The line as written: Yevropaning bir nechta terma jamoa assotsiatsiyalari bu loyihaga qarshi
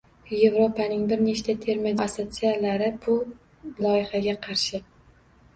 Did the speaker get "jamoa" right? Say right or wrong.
wrong